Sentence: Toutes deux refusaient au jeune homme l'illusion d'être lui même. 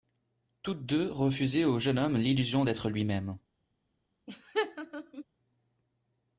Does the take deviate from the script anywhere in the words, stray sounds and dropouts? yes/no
yes